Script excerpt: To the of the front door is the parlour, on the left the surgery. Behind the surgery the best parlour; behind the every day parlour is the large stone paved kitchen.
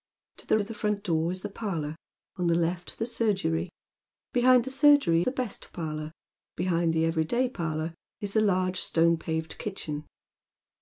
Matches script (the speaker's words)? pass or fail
pass